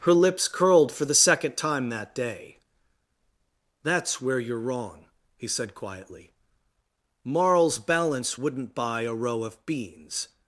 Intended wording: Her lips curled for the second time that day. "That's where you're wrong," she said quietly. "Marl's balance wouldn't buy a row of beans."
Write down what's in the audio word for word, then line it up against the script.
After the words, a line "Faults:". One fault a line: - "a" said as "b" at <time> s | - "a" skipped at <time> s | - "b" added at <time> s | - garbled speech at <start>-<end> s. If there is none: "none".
Her lips curled for the second time that day. "That's where you're wrong," he said quietly. "Marl's balance wouldn't buy a row of beans."
Faults:
- "she" said as "he" at 5.4 s